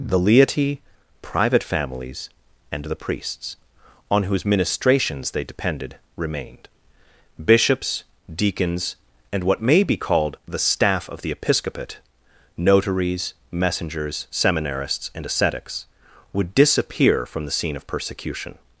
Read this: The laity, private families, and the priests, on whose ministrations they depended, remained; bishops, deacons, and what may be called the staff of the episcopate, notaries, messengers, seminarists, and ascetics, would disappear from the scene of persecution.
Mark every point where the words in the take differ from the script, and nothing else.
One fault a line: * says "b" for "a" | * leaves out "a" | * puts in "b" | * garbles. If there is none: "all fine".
all fine